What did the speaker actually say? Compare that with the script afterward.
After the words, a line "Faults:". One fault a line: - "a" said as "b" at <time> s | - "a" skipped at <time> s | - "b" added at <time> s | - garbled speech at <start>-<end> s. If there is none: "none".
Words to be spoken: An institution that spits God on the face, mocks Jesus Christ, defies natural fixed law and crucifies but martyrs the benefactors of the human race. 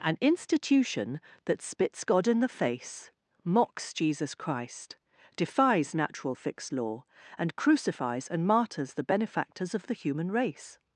An institution that spits God in the face, mocks Jesus Christ, defies natural fixed law and crucifies and martyrs the benefactors of the human race.
Faults:
- "on" said as "in" at 2.3 s
- "but" said as "and" at 8.3 s